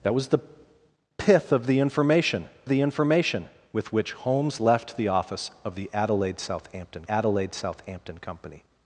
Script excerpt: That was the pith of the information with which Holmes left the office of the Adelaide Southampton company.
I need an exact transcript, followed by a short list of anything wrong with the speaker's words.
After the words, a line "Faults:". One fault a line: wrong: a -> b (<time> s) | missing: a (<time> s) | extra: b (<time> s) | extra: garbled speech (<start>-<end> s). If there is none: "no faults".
That was the pith of the information the information with which Holmes left the office of the Adelaide Southampton Adelaide Southampton company.
Faults:
extra: the information (2.7 s)
extra: Adelaide Southampton (7.1 s)